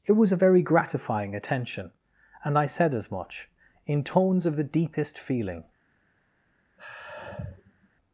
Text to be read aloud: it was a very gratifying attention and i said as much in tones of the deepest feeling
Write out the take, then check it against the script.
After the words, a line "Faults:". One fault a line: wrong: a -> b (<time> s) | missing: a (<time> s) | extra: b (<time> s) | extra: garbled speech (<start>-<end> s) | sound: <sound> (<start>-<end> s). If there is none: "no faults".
it was a very gratifying attention and i said as much in tones of the deepest feeling
Faults:
sound: sigh (6.8-7.9 s)